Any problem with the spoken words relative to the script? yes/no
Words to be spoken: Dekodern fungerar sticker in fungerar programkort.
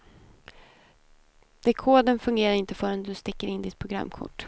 yes